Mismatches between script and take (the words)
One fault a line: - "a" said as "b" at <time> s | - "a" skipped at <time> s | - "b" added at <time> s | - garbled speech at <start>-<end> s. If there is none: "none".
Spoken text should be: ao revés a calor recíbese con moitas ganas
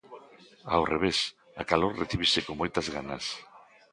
none